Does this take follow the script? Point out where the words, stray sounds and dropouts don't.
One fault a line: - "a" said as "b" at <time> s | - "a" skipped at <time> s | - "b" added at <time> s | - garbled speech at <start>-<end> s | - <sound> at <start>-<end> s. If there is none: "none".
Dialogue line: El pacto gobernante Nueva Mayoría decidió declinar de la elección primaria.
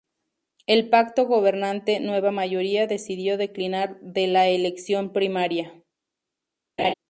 - laugh at 6.8-6.9 s